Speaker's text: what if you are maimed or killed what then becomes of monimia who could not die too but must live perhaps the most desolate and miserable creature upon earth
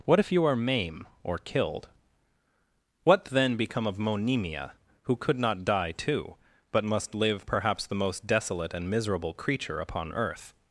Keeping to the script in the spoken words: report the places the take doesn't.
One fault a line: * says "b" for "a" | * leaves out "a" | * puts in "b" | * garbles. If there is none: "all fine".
* says "maim" for "maimed"
* says "become" for "becomes"